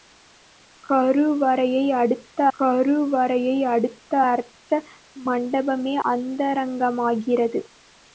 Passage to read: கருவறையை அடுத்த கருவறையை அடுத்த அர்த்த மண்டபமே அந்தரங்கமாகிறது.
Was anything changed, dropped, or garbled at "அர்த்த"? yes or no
no